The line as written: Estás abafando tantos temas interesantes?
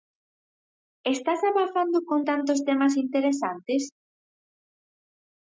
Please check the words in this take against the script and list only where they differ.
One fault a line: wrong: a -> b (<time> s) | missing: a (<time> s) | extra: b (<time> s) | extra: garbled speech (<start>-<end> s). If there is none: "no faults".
extra: con (2.1 s)